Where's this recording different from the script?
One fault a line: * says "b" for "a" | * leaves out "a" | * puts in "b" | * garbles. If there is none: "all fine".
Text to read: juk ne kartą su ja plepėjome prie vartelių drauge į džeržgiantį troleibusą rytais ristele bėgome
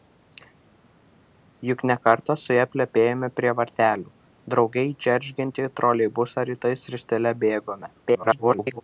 * garbles